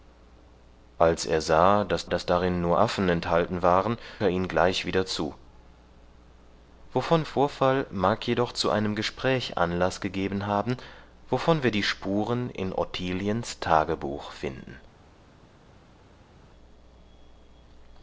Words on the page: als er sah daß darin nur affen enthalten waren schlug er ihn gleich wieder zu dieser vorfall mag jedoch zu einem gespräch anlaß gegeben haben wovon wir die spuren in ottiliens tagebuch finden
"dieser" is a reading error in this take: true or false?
true